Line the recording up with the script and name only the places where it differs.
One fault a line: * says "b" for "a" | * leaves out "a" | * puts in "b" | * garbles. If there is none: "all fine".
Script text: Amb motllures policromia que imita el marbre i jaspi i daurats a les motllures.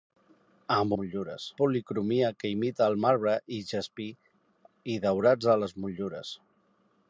all fine